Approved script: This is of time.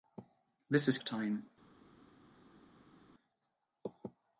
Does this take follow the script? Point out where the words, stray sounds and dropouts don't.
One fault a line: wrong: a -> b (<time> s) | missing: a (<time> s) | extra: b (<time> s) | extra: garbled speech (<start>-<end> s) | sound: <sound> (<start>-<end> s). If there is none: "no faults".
no faults